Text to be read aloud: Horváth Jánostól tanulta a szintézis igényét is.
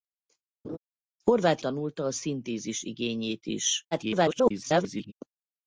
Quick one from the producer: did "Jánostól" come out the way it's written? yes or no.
no